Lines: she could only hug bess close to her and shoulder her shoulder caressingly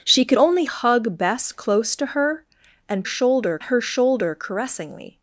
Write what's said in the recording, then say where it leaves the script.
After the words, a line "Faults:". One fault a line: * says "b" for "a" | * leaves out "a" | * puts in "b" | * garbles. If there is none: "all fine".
she could only hug bess close to her and shoulder her shoulder caressingly
Faults:
all fine